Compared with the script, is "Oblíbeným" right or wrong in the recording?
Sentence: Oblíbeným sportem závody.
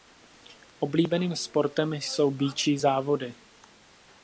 right